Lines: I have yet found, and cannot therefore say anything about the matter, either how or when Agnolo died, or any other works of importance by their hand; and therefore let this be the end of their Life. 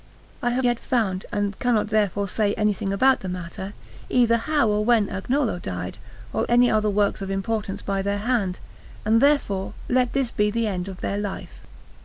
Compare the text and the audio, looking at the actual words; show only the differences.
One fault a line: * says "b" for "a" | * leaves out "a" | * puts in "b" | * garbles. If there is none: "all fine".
all fine